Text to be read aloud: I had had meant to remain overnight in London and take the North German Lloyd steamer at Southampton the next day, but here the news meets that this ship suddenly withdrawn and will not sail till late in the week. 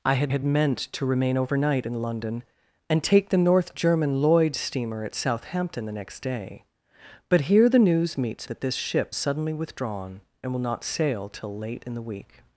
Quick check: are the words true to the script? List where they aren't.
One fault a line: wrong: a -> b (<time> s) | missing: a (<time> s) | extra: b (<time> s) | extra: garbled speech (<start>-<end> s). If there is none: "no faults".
no faults